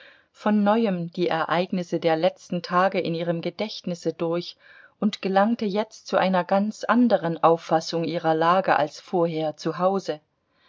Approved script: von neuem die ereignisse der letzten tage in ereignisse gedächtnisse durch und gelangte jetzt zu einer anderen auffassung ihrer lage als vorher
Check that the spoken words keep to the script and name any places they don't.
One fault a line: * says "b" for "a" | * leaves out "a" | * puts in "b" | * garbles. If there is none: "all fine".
* says "ihrem" for "ereignisse"
* puts in "ganz"